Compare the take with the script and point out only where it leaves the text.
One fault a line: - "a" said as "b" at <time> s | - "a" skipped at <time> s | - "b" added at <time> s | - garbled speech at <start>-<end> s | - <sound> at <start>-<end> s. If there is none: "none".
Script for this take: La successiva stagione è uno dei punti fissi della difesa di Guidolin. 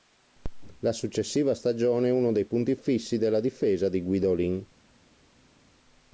none